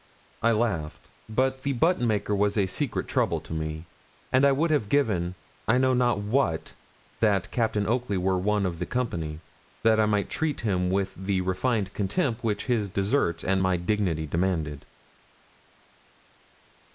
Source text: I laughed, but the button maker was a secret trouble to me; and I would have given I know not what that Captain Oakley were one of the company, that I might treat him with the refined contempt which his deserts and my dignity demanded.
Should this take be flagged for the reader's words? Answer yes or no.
no